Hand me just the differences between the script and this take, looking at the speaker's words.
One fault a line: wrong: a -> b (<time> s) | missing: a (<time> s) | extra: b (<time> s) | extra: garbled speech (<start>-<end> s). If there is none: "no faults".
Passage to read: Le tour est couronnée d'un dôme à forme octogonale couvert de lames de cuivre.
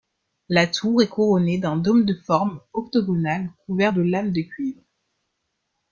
wrong: Le -> La (0.5 s)
wrong: à -> de (2.0 s)